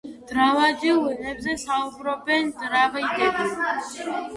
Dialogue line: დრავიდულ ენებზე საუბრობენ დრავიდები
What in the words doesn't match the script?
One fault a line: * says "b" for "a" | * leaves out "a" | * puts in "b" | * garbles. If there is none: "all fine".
all fine